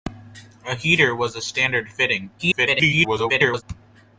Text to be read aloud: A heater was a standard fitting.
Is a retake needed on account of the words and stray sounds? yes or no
yes